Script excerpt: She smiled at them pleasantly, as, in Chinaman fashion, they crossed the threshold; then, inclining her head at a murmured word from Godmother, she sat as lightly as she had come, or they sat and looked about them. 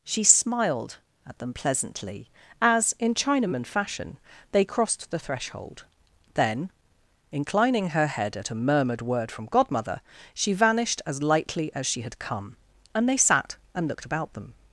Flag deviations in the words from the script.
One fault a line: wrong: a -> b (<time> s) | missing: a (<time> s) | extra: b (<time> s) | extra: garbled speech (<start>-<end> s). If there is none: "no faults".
wrong: sat -> vanished (10.5 s)
wrong: or -> and (12.9 s)